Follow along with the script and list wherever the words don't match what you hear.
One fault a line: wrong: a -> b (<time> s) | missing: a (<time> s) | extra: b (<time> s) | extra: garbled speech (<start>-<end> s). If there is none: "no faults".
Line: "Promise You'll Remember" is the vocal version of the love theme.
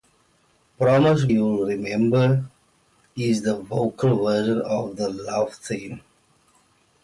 no faults